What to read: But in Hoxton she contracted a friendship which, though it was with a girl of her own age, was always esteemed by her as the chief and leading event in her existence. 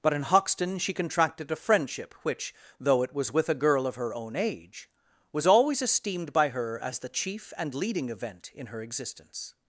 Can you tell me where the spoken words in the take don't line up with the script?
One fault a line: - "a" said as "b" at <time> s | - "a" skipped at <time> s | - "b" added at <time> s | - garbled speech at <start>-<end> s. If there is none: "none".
none